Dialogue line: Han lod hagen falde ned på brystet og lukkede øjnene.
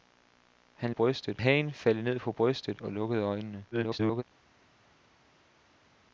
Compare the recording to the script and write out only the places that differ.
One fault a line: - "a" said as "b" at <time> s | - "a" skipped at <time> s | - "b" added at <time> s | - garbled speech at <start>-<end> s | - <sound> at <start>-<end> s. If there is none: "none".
- "lod" said as "brystet" at 0.9 s
- garbled speech at 3.7-4.2 s